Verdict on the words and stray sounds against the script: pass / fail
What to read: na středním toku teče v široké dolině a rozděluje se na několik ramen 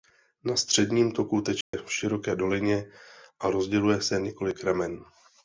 fail